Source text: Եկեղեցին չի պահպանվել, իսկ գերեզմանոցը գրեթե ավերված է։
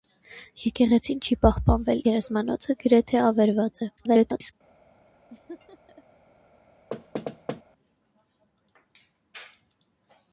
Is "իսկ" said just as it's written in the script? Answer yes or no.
no